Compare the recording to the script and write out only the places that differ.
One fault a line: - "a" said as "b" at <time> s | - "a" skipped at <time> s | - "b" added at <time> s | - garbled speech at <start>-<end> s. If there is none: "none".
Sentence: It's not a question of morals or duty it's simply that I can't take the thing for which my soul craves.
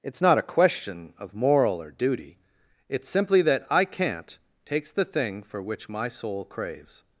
- "morals" said as "moral" at 1.3 s
- "take" said as "takes" at 4.7 s